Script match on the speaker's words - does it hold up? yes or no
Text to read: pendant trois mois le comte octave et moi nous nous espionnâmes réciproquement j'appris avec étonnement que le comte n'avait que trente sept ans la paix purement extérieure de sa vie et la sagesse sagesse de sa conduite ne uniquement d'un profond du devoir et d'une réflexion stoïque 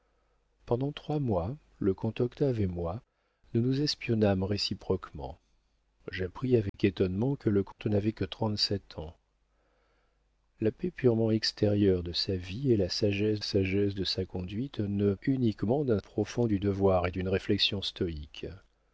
yes